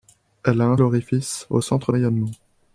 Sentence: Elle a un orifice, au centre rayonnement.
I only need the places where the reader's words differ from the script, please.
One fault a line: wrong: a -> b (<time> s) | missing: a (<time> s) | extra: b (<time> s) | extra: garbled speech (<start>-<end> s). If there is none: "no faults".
no faults